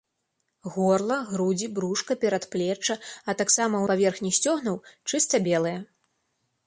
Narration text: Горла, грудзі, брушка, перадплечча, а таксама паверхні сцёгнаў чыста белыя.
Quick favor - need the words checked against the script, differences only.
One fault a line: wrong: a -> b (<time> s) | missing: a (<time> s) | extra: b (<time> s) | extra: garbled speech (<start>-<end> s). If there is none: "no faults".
no faults